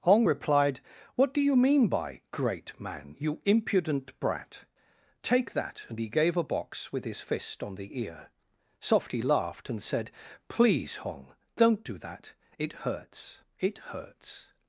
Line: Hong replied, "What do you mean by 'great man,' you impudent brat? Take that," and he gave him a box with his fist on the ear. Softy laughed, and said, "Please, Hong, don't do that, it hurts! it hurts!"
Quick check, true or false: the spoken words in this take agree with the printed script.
false